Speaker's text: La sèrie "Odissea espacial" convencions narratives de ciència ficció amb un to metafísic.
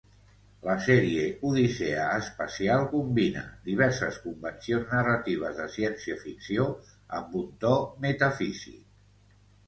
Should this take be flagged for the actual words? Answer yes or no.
yes